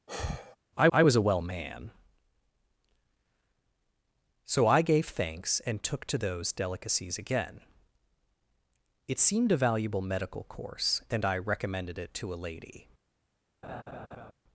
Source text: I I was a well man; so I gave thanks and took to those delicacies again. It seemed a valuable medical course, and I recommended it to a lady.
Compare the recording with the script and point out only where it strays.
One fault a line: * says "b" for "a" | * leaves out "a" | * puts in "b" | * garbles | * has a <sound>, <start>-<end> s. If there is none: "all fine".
* has a sigh, 0.1-0.6 s
* has a laugh, 13.6-14.3 s